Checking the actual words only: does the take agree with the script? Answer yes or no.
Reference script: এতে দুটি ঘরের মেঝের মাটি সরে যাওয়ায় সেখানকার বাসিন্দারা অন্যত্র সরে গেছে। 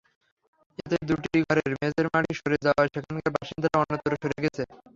yes